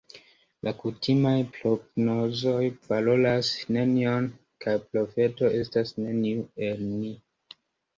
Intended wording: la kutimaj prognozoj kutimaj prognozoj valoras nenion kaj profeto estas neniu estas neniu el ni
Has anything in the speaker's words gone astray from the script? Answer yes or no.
yes